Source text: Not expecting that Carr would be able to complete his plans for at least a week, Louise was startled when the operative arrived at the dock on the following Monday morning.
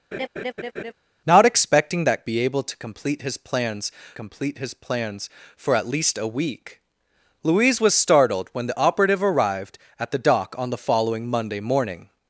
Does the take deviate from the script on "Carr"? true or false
true